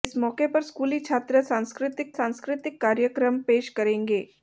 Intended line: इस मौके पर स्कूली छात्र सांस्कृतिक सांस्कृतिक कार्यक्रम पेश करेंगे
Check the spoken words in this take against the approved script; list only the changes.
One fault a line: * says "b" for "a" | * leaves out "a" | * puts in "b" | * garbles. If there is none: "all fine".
all fine